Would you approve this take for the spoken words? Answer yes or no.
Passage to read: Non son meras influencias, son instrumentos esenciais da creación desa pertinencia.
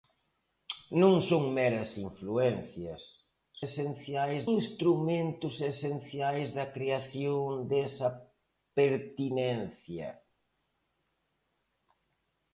no